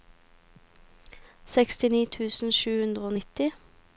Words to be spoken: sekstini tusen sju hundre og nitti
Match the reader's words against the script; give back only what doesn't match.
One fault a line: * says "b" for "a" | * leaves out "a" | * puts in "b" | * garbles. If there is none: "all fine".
all fine